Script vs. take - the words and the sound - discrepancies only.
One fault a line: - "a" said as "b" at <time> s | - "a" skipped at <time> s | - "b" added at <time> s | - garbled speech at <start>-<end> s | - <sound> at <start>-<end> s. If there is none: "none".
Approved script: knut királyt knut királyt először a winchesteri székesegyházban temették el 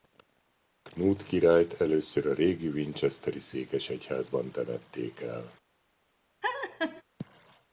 - "knut királyt" skipped at 1.8 s
- "régi" added at 2.3 s
- laugh at 6.4-7.0 s